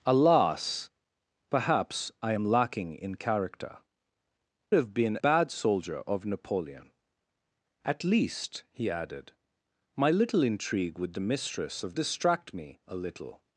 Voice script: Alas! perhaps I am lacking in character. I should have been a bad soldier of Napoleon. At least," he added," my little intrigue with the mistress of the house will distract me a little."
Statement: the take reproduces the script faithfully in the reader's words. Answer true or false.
false